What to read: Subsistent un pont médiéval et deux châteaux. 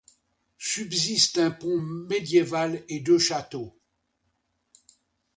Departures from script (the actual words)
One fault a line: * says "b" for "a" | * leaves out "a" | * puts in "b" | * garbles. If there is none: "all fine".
all fine